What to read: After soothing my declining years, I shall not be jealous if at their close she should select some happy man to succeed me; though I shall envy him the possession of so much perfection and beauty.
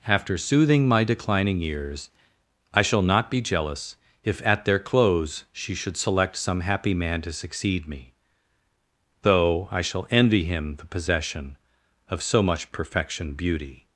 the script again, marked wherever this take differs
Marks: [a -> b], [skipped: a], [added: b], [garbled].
After soothing my declining years, I shall not be jealous if at their close she should select some happy man to succeed me; though I shall envy him the possession of so much perfection [skipped: and] beauty.